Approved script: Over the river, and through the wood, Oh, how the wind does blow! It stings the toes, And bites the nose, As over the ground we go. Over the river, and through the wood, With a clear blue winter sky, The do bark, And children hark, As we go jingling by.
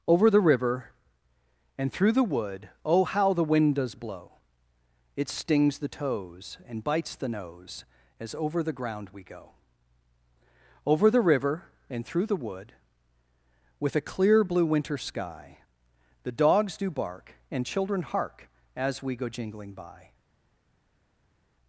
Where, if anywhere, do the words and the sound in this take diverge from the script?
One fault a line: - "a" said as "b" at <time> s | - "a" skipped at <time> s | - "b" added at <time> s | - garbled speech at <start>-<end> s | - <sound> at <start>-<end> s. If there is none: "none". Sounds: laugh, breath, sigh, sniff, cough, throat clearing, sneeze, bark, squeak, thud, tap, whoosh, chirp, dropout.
- "dogs" added at 16.3 s